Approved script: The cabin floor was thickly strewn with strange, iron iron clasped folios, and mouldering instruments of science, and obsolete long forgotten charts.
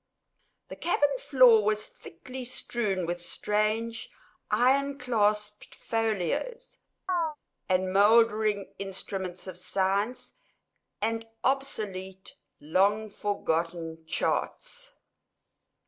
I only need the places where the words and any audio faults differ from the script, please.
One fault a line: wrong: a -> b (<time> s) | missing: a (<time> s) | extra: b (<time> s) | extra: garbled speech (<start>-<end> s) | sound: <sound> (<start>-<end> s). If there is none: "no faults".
missing: iron (5.0 s)
sound: chirp (7.1-7.4 s)